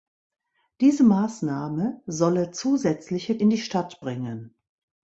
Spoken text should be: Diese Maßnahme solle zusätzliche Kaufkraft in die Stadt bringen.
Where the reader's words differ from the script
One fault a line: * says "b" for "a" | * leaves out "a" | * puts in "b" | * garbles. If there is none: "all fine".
* leaves out "Kaufkraft"